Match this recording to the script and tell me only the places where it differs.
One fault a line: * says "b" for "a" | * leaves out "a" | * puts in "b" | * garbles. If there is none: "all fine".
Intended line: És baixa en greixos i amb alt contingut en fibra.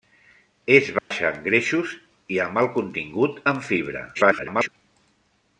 * garbles